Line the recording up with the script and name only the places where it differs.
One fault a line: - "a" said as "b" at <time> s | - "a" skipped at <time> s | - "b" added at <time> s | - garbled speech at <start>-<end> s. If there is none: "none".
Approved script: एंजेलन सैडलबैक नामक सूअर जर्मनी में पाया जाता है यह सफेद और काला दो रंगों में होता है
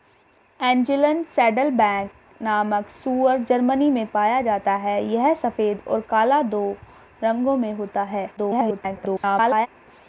- garbled speech at 8.4-9.7 s